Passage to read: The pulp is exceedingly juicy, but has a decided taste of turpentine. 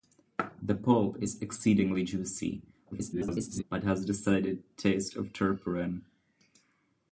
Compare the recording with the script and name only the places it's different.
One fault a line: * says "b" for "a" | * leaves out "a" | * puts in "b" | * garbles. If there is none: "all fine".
* garbles